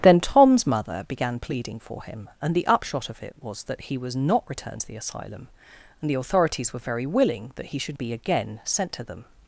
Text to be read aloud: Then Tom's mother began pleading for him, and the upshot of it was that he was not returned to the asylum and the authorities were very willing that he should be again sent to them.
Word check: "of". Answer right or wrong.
right